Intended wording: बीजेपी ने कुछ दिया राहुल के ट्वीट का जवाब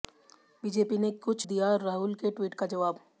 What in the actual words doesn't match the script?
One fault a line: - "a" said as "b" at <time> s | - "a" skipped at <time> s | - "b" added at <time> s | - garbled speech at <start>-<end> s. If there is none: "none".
none